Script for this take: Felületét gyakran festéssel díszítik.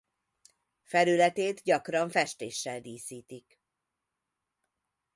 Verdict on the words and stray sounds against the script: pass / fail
pass